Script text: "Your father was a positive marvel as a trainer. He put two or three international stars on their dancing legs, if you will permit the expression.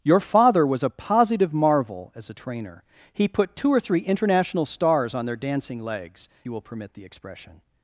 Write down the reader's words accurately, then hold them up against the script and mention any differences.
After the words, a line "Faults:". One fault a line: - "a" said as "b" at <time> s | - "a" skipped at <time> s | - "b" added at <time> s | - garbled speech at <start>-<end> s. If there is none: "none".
"Your father was a positive marvel as a trainer. He put two or three international stars on their dancing legs, you will permit the expression.
Faults:
- "if" skipped at 6.3 s